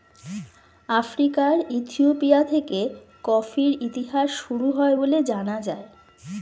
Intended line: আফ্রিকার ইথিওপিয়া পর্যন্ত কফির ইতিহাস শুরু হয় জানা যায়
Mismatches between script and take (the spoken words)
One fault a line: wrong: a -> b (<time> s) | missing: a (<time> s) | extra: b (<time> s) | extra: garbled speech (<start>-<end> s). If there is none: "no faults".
wrong: পর্যন্ত -> থেকে (2.4 s)
extra: বলে (4.9 s)